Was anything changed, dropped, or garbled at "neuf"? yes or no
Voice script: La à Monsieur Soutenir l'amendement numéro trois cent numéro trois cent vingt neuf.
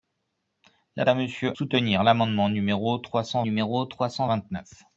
no